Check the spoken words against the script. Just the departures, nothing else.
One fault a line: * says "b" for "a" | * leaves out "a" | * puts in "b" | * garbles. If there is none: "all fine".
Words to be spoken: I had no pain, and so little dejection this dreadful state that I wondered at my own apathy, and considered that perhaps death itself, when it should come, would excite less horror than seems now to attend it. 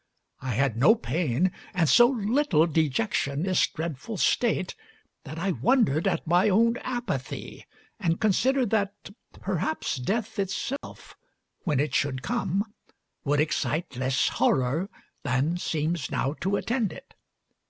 all fine